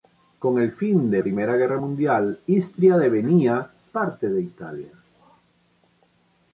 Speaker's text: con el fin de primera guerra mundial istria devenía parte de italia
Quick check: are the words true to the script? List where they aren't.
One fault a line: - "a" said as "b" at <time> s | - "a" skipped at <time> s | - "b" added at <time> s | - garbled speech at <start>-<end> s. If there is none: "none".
none